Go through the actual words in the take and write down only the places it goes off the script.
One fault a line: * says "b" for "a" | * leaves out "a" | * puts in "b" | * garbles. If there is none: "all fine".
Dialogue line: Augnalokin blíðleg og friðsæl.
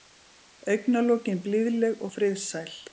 all fine